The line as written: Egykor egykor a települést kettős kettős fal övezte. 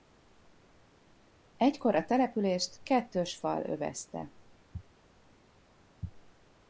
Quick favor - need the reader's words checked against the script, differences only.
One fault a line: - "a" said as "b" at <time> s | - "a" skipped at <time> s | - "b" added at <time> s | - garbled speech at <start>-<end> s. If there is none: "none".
- "egykor" skipped at 1.9 s
- "kettős" skipped at 3.4 s